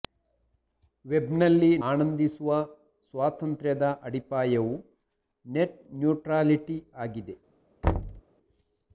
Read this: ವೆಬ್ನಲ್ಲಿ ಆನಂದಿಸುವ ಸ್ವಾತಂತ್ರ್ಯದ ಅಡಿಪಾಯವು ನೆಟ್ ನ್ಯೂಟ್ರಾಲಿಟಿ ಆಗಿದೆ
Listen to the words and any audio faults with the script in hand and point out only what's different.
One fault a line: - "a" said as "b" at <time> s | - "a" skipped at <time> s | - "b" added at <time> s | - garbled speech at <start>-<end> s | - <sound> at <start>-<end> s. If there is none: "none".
- thud at 7.8-8.2 s